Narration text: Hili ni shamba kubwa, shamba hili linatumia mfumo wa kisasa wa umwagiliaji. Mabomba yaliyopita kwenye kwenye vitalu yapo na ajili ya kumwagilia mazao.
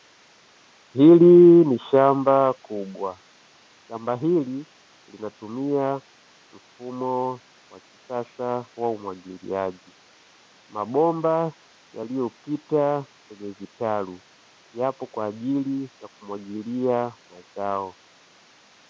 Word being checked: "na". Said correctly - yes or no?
no